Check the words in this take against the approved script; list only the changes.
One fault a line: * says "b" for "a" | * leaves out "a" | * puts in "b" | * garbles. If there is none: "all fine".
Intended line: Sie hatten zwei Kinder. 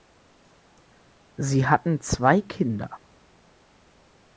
all fine